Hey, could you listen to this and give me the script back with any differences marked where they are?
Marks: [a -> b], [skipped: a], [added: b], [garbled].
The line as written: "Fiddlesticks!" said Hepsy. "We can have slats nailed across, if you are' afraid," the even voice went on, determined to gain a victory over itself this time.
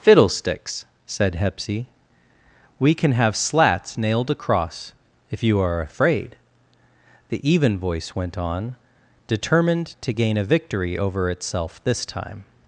"Fiddlesticks!" said Hepsy. "We can have slats nailed across, if you are' afraid," the even voice went on, determined to gain a victory over itself this time.